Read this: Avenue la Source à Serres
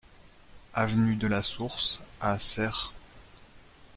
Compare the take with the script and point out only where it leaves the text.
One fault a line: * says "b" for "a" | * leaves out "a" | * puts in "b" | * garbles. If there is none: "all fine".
* puts in "de"